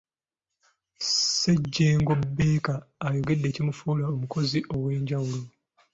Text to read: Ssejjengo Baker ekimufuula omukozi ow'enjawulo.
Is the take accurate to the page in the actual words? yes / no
no